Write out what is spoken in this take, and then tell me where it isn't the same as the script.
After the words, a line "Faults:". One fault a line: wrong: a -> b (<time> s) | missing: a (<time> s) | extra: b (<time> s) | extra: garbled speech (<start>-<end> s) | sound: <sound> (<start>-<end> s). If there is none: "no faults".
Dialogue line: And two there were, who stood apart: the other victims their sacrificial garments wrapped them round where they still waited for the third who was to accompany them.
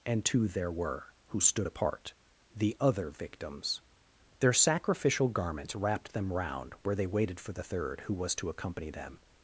And two there were, who stood apart: the other victims their sacrificial garments wrapped them round where they waited for the third who was to accompany them.
Faults:
missing: still (7.1 s)